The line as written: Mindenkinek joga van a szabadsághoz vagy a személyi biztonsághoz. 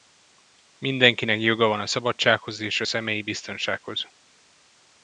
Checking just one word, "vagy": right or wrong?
wrong